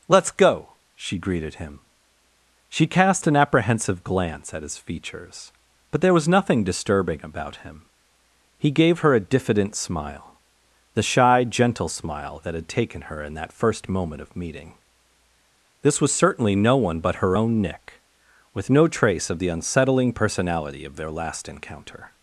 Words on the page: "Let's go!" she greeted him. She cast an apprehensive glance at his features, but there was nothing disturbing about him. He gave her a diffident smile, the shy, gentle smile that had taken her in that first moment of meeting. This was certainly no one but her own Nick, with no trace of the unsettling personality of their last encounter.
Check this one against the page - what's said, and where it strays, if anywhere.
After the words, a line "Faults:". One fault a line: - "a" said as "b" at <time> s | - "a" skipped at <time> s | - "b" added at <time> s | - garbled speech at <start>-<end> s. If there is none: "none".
"Let's go!" she greeted him. She cast an apprehensive glance at his features, but there was nothing disturbing about him. He gave her a diffident smile, the shy, gentle smile that had taken her in that first moment of meeting. This was certainly no one but her own Nick, with no trace of the unsettling personality of their last encounter.
Faults:
none